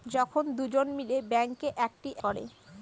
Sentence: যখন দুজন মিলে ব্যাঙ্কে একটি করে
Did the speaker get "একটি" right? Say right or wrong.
right